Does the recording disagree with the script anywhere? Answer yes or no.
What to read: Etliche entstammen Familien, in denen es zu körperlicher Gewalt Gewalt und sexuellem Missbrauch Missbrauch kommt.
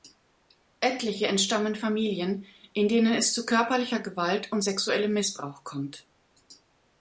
yes